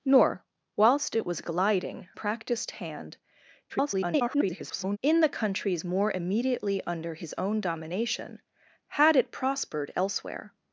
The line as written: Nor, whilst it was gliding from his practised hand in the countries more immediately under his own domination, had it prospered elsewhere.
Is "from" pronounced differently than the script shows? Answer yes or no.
yes